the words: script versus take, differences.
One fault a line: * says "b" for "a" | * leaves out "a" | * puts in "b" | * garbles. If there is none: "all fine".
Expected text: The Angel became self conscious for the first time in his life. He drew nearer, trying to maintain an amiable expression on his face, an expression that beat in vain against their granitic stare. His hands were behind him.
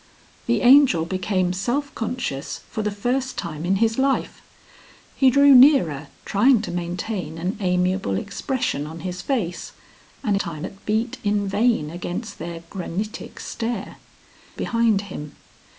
* says "time" for "expression"
* leaves out "His hands were"